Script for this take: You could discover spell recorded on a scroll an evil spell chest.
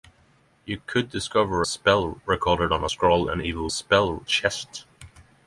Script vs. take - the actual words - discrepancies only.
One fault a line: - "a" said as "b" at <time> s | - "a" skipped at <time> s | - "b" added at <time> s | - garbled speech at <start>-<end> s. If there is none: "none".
none